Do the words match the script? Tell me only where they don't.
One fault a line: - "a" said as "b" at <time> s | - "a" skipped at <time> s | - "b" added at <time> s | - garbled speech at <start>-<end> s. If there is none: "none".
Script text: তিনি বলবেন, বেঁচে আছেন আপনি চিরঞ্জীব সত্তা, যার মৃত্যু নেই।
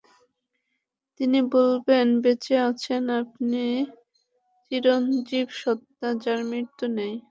none